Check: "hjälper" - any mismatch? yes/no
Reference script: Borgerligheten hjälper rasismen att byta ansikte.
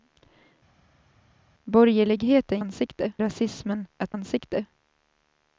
yes